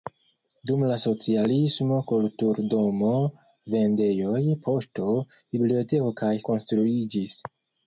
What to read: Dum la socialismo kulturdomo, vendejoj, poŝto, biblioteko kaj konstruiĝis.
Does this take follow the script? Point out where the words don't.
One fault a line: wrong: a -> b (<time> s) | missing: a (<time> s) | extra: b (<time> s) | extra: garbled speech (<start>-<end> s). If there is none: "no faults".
no faults